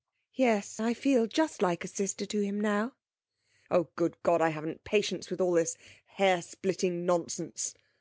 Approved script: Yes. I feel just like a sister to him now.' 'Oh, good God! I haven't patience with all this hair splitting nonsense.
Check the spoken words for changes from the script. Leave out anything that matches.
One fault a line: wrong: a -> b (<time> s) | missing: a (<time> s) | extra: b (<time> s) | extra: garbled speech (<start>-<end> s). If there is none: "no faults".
no faults